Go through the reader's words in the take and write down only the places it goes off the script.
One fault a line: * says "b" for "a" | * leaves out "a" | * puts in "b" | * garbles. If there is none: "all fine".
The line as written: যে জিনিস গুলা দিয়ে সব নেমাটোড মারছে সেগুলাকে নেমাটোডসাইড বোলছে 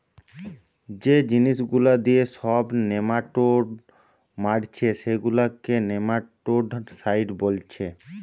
all fine